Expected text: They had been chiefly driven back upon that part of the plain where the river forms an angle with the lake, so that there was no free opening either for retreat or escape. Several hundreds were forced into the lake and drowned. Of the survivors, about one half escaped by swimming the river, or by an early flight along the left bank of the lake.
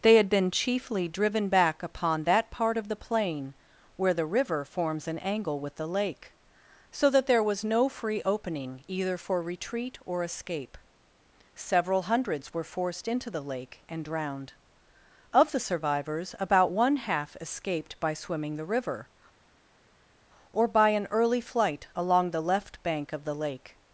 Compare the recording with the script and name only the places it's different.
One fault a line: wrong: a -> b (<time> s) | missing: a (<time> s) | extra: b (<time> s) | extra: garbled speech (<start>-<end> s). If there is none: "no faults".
no faults